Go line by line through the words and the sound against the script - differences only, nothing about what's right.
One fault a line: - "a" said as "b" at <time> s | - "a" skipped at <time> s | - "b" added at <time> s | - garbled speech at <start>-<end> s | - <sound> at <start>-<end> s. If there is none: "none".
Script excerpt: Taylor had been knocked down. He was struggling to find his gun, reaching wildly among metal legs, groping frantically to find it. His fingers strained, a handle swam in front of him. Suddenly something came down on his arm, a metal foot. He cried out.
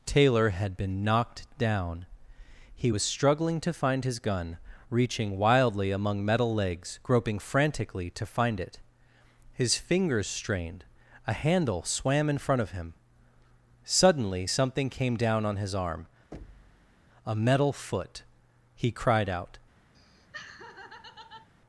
- thud at 16.3-17.0 s
- laugh at 19.9-21.5 s